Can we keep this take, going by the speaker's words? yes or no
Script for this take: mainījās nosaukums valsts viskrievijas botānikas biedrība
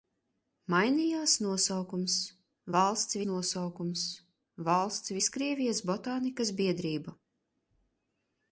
no